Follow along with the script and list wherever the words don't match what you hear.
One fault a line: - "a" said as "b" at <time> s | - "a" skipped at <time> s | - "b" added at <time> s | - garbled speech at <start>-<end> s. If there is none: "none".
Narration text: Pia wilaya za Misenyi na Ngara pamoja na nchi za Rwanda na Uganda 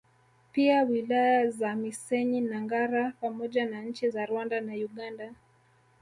none